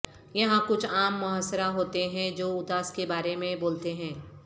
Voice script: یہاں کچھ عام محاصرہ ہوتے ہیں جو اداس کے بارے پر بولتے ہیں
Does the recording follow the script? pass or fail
fail